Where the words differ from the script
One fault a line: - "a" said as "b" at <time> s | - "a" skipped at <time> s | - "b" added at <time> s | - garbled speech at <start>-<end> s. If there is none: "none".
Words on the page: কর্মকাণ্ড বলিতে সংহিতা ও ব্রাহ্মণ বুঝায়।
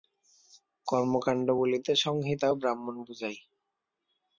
none